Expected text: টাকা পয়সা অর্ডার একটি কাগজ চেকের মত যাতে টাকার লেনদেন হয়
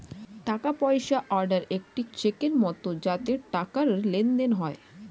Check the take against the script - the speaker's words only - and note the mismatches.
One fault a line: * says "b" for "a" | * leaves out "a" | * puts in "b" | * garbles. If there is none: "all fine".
* leaves out "কাগজ"